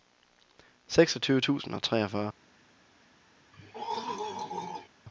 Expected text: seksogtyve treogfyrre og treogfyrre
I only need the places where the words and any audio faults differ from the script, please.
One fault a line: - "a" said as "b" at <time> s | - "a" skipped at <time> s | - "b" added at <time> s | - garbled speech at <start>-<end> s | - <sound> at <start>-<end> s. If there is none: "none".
- "treogfyrre" said as "tusind" at 1.4 s
- throat clearing at 3.5-4.9 s